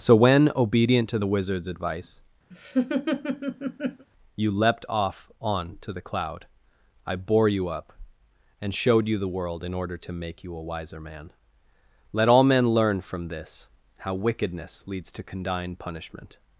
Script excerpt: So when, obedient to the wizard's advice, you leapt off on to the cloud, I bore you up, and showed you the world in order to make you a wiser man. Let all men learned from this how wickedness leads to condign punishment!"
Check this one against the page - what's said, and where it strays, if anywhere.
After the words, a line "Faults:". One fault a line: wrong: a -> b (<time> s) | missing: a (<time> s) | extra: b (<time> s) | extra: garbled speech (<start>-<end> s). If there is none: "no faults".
So when, obedient to the wizard's advice, you leapt off on to the cloud, I bore you up, and showed you the world in order to make you a wiser man. Let all men learn from this how wickedness leads to condign punishment!"
Faults:
wrong: learned -> learn (12.7 s)